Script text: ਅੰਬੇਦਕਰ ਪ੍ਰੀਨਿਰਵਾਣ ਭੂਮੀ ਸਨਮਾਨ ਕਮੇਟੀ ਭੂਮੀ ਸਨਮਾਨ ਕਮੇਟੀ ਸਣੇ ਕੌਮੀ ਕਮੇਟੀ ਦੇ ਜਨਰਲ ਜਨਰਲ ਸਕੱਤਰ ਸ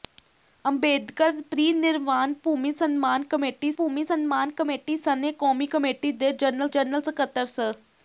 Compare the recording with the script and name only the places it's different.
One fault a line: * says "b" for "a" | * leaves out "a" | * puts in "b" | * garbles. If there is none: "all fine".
all fine